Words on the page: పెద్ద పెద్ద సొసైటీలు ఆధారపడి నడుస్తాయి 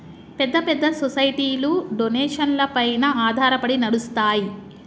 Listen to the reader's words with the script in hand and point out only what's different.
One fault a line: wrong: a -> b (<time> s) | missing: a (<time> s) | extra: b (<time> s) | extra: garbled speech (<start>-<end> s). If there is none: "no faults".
extra: డొనేషన్లపైన (1.9 s)